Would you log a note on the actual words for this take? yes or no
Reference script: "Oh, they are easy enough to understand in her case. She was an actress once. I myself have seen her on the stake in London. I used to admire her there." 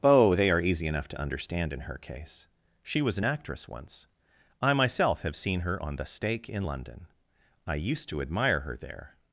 no